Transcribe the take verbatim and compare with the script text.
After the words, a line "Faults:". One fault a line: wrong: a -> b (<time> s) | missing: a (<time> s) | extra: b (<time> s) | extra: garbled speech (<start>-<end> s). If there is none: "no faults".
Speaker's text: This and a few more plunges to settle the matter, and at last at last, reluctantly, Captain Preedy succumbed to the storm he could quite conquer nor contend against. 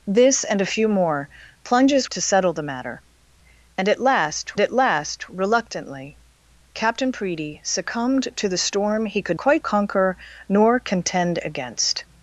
This and a few more plunges to settle the matter, and at last at last, reluctantly, Captain Preedy succumbed to the storm he could quite conquer nor contend against.
Faults:
no faults